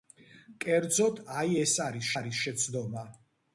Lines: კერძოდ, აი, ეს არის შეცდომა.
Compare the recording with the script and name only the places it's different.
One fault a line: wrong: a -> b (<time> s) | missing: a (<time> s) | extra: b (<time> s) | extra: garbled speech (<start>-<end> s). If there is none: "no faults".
extra: არის (2.2 s)